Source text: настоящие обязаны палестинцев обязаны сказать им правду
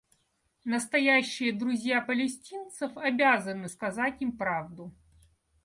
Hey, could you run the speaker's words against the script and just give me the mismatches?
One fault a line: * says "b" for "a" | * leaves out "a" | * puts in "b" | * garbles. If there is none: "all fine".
* says "друзья" for "обязаны"